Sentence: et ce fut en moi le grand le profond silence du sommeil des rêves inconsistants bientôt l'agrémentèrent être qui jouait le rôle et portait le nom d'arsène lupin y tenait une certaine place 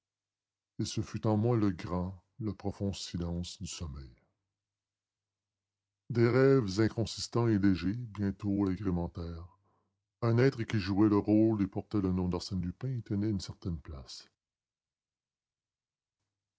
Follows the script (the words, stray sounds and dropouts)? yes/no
no